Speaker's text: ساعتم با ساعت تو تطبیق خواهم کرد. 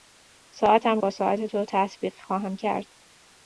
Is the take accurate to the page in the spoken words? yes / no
yes